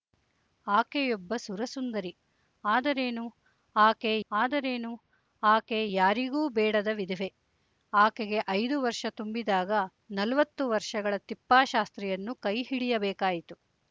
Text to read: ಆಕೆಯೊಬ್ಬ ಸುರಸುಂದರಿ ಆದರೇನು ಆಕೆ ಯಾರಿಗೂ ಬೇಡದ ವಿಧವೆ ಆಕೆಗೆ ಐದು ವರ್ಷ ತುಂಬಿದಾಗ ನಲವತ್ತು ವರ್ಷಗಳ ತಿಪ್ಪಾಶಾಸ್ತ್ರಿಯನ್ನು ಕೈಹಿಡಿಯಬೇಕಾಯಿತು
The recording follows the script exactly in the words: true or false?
false